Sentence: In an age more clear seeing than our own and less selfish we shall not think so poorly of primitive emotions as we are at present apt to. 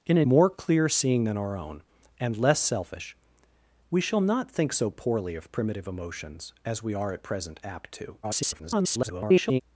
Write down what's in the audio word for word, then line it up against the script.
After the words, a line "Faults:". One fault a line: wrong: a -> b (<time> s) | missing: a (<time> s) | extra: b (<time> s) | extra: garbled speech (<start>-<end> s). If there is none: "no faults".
In an more clear seeing than our own and less selfish we shall not think so poorly of primitive emotions as we are at present apt to. [garbled]
Faults:
missing: age (0.3 s)
extra: garbled speech (8.2-9.6 s)